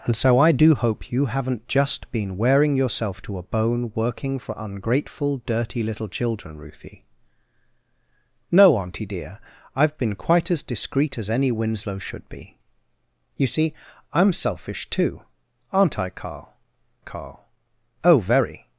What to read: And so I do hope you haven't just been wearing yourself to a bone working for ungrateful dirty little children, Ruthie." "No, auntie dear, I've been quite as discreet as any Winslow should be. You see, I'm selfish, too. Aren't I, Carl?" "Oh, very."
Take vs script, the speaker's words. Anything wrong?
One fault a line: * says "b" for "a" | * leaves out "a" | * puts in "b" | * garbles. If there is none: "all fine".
* puts in "Carl"